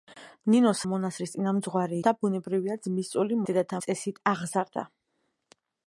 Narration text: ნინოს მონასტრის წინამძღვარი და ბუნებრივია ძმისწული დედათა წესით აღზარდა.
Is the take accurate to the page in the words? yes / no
yes